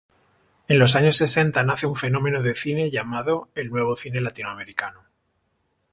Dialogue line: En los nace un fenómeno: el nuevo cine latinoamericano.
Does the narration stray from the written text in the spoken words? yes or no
yes